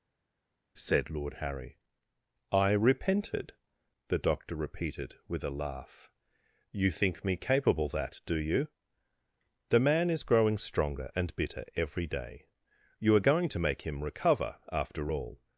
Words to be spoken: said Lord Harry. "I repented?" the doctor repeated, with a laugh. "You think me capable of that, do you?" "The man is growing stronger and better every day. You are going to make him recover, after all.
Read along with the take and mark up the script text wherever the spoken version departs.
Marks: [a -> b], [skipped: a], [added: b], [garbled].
said Lord Harry. "I repented?" the doctor repeated, with a laugh. "You think me capable [skipped: of] that, do you?" "The man is growing stronger and [better -> bitter] every day. You are going to make him recover, after all.